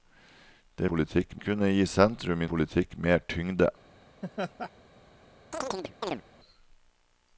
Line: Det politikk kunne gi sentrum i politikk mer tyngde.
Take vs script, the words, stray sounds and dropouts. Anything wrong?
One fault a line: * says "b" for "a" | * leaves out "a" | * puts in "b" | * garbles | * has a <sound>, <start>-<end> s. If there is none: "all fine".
* has a laugh, 4.2-4.7 s
* has a chirp, 5.5-6.2 s